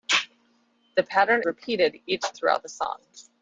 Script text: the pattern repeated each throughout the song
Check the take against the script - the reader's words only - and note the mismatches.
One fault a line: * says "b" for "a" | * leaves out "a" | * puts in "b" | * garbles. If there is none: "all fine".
all fine